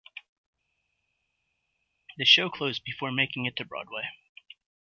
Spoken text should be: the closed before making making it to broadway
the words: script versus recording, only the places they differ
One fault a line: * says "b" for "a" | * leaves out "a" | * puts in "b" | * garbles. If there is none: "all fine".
* puts in "show"
* leaves out "making"